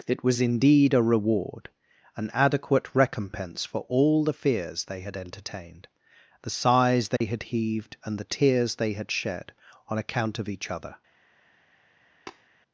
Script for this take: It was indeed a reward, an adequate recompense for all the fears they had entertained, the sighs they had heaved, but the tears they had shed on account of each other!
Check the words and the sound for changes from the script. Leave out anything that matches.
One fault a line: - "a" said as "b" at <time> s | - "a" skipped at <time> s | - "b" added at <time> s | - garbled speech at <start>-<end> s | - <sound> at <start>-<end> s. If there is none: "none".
- dropout at 7.2-7.2 s
- "but" said as "and" at 8.0 s
- tap at 12.3-12.5 s